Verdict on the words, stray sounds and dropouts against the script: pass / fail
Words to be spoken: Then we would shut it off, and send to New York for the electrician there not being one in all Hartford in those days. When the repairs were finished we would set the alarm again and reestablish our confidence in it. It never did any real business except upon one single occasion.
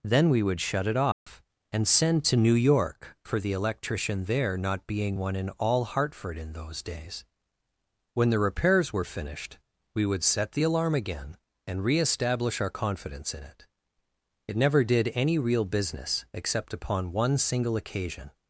fail